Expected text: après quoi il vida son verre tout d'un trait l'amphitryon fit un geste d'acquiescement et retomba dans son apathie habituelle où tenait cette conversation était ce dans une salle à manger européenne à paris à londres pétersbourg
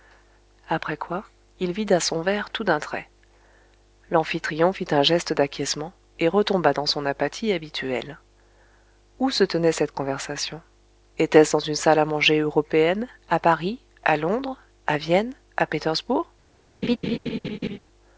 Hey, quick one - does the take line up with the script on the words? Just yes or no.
no